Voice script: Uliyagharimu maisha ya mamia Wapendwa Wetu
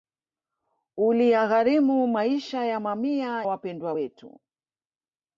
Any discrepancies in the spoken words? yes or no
no